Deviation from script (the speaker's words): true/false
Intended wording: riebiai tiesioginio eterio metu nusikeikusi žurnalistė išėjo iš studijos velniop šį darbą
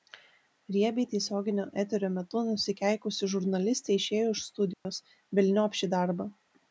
false